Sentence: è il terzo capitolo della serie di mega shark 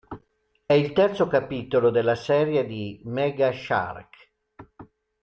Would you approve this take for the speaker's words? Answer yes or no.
yes